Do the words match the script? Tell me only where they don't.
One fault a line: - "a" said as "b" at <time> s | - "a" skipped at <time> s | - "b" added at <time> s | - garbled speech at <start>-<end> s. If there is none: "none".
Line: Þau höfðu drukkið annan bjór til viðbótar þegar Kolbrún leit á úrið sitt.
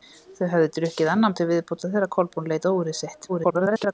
- "bjór" skipped at 1.4 s
- garbled speech at 3.3-3.9 s